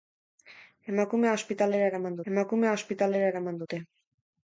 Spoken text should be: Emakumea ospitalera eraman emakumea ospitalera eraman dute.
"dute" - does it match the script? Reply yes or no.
yes